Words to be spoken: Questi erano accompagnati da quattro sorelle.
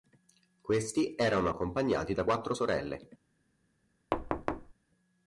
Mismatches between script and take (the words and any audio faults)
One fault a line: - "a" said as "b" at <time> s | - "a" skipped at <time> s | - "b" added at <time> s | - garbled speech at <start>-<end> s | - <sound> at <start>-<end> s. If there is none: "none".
- thud at 4.1-4.7 s